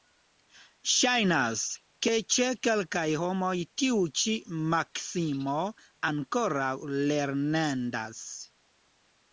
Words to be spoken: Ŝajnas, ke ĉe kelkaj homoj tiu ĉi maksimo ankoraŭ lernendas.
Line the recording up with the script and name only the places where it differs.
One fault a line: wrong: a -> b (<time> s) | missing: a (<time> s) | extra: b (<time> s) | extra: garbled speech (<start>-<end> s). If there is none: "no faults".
no faults